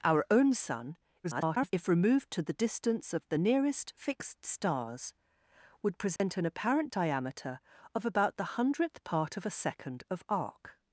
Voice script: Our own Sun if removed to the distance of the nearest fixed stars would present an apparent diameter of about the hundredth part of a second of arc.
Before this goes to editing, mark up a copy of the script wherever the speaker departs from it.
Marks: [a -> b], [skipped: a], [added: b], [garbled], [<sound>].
Our own Sun [garbled] if removed to the distance of the nearest fixed stars would present [dropout] an apparent diameter of about the hundredth part of a second of arc.